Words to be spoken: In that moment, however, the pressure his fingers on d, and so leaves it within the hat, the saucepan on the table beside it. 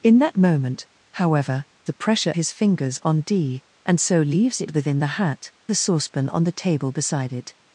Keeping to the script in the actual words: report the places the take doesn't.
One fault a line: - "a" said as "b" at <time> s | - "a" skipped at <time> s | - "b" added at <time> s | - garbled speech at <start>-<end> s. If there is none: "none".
none